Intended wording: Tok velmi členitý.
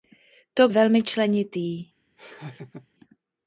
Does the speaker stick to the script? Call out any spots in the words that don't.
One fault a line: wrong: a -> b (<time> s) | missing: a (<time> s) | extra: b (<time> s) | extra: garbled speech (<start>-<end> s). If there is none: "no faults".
no faults